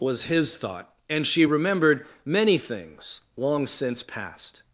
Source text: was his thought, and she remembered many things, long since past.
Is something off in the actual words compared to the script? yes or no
no